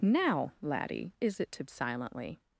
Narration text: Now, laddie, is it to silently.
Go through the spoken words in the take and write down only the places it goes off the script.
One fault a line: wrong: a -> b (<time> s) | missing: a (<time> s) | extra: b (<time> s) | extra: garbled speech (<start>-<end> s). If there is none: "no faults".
no faults